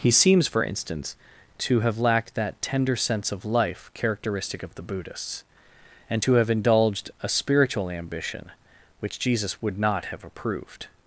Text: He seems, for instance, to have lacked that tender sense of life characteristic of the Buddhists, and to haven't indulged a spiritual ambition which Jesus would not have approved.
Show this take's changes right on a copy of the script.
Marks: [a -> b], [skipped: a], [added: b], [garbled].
He seems, for instance, to have lacked that tender sense of life characteristic of the Buddhists, and to [haven't -> have] indulged a spiritual ambition which Jesus would not have approved.